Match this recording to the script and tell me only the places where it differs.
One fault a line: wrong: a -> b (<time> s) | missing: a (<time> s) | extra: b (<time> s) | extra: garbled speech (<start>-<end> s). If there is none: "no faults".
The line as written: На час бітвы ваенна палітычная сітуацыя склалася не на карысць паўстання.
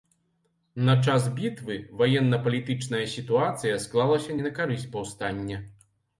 no faults